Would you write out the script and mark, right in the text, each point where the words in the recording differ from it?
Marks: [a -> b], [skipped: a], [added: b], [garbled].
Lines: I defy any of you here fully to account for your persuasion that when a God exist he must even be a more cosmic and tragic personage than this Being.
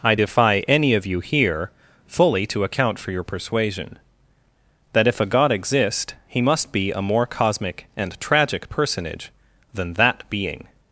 I defy any of you here fully to account for your persuasion that [when -> if] a God exist he must [skipped: even] be a more cosmic and tragic personage than [this -> that] Being.